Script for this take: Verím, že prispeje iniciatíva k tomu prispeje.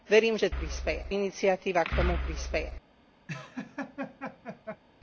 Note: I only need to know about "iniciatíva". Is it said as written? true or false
true